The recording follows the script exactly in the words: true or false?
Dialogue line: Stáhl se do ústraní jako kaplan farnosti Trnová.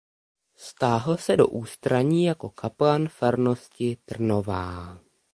true